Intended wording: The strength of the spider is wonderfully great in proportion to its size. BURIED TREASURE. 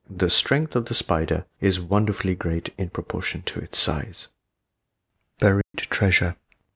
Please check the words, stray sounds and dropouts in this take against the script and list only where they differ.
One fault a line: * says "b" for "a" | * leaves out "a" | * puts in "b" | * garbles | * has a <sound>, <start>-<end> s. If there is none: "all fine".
* has a dropout, 5.6-5.7 s